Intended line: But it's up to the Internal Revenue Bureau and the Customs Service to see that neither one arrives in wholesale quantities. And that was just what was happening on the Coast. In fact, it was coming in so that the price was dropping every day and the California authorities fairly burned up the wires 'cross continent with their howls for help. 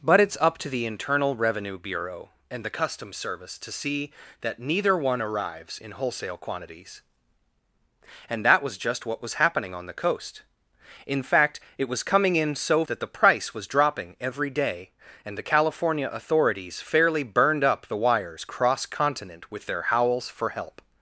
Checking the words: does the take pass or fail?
pass